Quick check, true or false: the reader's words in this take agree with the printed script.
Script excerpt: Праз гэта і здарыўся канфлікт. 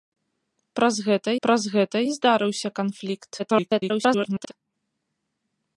false